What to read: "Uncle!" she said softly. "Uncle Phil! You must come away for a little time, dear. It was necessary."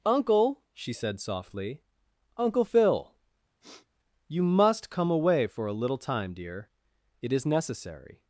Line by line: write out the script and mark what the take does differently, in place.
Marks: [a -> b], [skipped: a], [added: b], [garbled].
"Uncle!" she said softly. "Uncle Phil! You must come away for a little time, dear. It [was -> is] necessary."